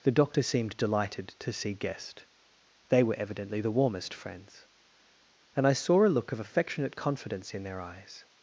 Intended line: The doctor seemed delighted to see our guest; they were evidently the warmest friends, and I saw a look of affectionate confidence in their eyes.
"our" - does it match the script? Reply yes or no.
no